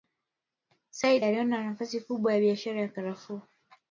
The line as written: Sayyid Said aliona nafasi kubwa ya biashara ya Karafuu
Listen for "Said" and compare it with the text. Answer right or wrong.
wrong